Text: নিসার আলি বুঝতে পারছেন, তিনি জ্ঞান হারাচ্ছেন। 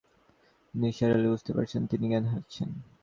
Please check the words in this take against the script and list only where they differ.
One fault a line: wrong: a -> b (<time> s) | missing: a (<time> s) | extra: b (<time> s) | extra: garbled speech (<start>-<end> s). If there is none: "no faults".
no faults